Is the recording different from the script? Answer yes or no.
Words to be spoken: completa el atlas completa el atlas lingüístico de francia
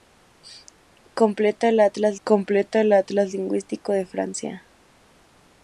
no